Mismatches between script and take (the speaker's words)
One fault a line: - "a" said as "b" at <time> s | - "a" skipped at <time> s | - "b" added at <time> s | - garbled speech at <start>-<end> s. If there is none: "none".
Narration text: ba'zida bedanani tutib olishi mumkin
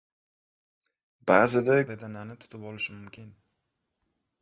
none